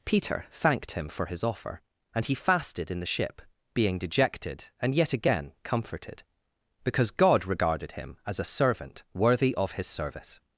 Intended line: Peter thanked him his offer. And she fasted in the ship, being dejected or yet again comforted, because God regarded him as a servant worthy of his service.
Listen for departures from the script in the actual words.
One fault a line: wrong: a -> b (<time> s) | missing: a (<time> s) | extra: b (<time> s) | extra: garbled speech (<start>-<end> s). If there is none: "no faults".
extra: for (1.1 s)
wrong: she -> he (2.2 s)
wrong: or -> and (4.8 s)